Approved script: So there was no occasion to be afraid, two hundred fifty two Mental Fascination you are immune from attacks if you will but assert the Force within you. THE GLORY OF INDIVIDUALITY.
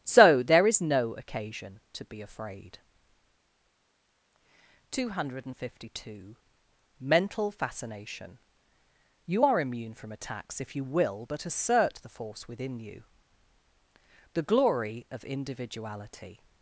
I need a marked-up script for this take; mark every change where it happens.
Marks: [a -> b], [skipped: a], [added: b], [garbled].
So there [was -> is] no occasion to be afraid, two hundred fifty two Mental Fascination you are immune from attacks if you will but assert the Force within you. THE GLORY OF INDIVIDUALITY.